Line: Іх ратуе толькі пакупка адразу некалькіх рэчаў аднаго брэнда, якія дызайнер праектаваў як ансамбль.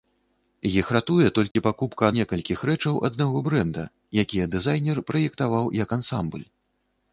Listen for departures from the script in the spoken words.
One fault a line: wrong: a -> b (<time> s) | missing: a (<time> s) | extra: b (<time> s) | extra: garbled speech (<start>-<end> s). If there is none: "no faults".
missing: адразу (2.1 s)